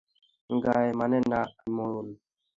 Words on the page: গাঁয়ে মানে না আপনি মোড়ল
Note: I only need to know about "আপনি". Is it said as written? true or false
false